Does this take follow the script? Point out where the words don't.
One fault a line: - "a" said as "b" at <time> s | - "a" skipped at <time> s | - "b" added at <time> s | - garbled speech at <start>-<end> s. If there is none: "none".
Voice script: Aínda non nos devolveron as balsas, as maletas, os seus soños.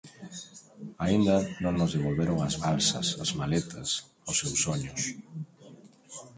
none